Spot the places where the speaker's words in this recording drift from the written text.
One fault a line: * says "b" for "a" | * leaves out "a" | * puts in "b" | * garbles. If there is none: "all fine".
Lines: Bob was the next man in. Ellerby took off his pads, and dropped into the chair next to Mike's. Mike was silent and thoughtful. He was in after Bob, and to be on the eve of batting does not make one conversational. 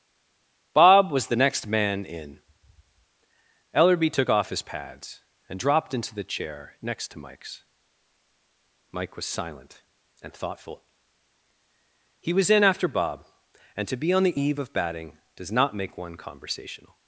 all fine